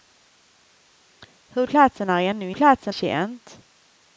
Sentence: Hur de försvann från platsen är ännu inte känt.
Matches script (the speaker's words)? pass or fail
fail